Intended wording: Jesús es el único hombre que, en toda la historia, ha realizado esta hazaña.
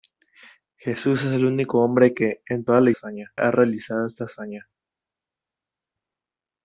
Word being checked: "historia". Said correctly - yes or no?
no